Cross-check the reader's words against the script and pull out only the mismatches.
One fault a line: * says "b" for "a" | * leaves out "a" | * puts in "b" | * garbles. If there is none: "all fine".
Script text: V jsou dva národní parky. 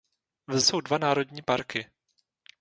all fine